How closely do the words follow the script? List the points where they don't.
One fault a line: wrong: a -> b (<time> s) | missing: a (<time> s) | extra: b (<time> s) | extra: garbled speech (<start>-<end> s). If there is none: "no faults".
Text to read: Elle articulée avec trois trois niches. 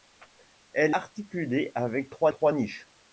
no faults